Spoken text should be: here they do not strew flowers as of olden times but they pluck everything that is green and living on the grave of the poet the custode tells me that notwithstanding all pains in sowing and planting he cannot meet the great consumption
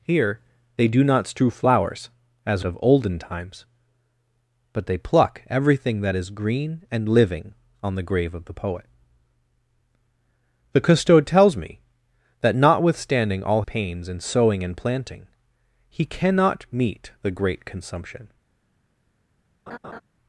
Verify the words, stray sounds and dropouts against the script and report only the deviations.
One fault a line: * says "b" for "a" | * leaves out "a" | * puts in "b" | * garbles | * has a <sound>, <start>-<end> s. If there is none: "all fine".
* has a laugh, 19.7-20.0 s